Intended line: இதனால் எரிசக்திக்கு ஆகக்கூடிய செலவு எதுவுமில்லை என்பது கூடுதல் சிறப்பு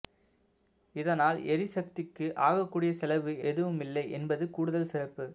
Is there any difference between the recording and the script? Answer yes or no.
no